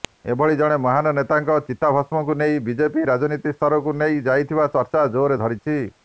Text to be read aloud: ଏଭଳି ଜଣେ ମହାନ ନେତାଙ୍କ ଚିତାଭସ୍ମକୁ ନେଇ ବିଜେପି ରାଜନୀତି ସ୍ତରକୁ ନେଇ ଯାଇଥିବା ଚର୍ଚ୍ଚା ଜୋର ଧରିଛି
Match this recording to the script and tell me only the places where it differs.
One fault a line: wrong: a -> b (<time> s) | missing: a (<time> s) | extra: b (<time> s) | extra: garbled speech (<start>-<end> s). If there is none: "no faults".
no faults